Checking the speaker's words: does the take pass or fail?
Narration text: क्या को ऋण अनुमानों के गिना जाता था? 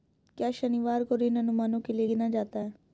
fail